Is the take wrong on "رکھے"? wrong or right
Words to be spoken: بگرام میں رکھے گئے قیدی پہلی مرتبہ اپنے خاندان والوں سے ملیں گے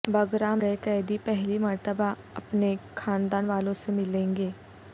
wrong